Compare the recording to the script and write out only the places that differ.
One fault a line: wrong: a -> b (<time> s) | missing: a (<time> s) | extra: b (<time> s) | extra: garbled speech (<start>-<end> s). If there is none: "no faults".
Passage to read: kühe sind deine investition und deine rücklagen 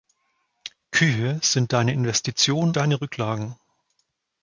missing: und (2.8 s)